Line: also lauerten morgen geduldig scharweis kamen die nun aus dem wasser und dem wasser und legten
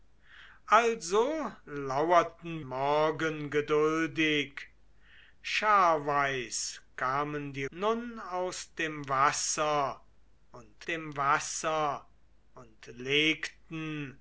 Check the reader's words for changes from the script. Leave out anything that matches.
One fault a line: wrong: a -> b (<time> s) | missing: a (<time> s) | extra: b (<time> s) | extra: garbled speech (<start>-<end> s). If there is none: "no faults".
no faults